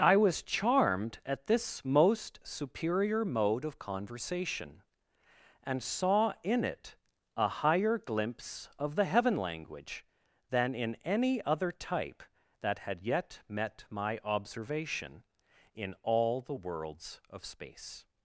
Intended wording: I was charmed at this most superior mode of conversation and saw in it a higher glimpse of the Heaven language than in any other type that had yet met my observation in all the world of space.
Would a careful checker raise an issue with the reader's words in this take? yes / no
yes